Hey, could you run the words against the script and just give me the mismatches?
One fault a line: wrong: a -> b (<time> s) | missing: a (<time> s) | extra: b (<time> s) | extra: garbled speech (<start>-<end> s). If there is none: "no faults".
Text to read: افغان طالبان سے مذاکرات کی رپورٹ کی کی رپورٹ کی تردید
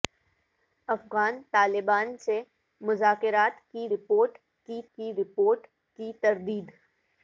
no faults